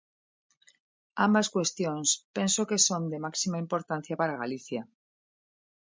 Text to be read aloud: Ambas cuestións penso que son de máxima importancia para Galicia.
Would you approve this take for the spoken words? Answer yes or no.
yes